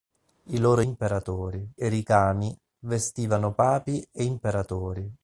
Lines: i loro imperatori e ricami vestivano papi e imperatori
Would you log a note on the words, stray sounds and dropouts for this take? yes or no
no